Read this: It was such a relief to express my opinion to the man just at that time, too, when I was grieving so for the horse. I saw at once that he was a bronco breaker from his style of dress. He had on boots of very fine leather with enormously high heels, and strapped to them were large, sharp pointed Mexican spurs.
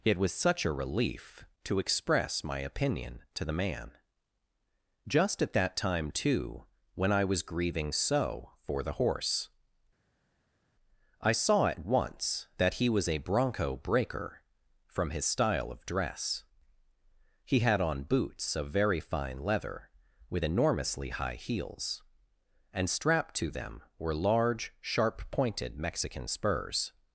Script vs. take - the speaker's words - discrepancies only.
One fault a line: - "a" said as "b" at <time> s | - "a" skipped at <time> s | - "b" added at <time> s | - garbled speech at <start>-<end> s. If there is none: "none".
none